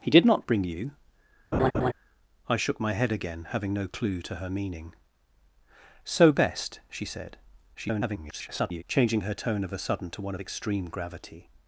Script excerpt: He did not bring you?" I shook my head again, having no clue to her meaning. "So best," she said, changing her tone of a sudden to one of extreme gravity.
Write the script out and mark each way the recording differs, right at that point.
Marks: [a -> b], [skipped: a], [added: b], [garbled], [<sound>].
He did not bring you?" [laugh] I shook my head again, having no clue to her meaning. "So best," she said, [garbled] changing her tone of a sudden to one of extreme gravity.